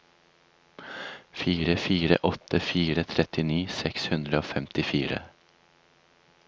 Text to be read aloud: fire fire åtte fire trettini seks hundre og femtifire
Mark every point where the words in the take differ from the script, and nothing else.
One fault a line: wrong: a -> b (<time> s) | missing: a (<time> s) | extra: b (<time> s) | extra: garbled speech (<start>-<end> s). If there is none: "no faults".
no faults